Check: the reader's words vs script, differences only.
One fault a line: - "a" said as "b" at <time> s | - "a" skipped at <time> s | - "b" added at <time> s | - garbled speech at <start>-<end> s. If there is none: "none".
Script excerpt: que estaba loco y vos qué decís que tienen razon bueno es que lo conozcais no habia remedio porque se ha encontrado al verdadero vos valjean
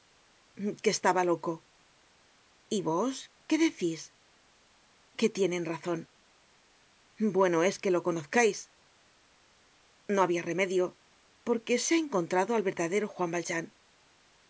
- "vos" said as "juan" at 13.1 s